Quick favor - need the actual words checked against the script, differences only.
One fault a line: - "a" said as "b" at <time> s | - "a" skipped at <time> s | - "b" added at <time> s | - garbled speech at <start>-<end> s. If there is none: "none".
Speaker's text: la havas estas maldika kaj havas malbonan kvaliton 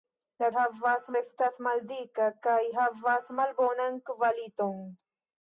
none